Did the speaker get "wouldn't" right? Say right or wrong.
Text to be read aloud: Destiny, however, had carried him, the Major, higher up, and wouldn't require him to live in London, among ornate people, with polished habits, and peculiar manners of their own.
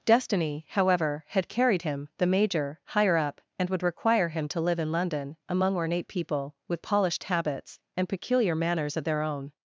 wrong